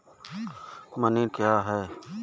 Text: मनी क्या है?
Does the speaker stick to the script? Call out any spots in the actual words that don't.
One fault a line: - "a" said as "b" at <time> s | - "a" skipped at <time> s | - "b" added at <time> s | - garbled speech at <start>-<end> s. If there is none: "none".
none